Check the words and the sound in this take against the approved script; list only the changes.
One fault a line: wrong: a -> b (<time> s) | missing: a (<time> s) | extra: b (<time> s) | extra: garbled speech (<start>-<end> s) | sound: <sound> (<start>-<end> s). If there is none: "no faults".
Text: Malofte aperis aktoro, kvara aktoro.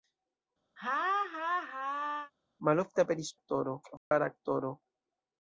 sound: laugh (0.8-2.3 s)
sound: dropout (4.0-4.1 s)